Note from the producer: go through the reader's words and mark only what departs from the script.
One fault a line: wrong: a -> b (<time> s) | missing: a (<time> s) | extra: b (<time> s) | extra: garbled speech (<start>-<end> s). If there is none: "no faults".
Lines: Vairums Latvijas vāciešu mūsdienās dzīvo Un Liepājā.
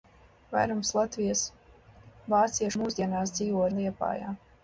no faults